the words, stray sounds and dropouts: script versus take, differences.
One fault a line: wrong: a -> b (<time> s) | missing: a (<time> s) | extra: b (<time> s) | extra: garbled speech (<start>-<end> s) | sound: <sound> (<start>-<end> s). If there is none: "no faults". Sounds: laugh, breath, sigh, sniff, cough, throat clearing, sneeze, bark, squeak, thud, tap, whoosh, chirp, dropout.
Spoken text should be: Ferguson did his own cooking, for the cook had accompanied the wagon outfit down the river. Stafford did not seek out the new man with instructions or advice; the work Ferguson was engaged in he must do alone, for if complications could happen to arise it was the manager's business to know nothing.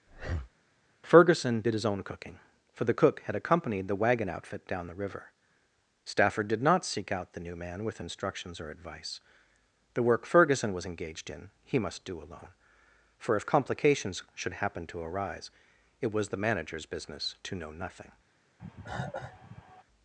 sound: breath (0.1-0.5 s)
wrong: could -> should (14.3 s)
sound: cough (18.6-19.8 s)